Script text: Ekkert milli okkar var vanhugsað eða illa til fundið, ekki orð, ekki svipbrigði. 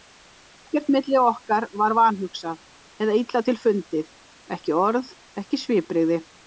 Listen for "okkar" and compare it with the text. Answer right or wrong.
right